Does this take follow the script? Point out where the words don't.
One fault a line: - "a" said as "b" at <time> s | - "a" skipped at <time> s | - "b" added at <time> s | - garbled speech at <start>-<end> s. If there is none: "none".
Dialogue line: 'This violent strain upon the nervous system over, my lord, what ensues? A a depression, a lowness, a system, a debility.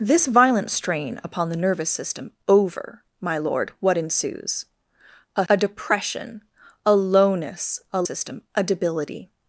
none